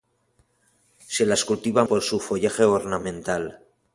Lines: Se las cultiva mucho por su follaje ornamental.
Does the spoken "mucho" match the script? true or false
false